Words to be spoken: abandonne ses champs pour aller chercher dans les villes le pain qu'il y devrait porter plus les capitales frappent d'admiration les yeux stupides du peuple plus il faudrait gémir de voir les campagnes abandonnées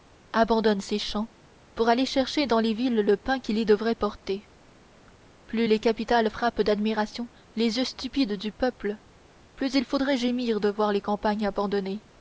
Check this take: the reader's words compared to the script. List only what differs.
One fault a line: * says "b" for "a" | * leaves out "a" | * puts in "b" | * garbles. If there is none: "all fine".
all fine